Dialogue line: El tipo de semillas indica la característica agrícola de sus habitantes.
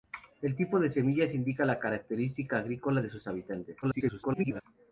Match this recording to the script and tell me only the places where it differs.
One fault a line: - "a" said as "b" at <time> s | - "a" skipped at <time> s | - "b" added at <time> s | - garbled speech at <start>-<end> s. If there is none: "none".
- garbled speech at 3.8-4.6 s